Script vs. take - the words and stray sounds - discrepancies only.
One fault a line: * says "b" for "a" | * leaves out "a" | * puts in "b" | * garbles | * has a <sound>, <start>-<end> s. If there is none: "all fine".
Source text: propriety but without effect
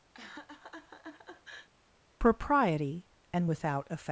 * has a laugh, 0.1-1.7 s
* says "and" for "but"